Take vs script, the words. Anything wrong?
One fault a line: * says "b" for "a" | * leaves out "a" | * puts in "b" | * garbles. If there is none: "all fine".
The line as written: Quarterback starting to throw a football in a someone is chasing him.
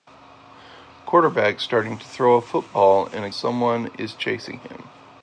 all fine